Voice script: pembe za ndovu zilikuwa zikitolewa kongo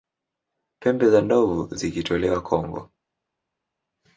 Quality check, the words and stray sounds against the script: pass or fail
fail